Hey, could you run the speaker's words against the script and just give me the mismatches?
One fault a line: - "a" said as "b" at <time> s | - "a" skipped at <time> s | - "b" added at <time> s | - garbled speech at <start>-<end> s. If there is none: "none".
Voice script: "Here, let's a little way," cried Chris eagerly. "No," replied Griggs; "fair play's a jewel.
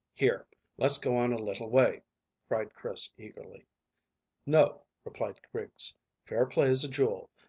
- "go on" added at 1.0 s